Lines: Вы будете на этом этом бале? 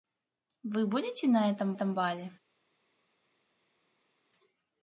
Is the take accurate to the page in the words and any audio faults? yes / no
yes